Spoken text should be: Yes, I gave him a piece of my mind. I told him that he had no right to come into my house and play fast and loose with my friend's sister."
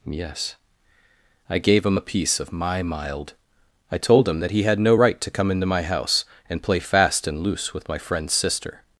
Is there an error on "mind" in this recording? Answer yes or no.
yes